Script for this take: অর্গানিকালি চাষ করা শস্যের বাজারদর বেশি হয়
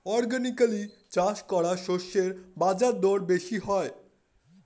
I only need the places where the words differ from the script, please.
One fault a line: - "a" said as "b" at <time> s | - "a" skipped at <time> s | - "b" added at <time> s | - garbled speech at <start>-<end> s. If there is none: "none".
none